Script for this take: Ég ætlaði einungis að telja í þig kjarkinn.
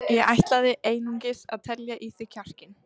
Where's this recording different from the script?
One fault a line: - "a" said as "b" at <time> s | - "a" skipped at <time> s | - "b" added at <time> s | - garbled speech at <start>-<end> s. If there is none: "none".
none